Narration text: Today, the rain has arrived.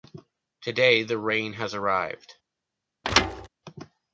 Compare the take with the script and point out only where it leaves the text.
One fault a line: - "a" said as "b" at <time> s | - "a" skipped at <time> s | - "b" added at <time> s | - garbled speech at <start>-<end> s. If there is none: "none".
none